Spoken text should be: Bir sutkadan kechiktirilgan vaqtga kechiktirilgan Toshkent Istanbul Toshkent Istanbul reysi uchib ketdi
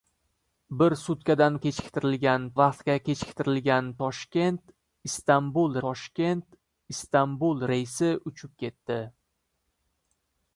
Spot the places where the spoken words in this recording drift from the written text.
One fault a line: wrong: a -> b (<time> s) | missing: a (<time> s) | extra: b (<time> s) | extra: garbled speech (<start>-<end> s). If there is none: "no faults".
no faults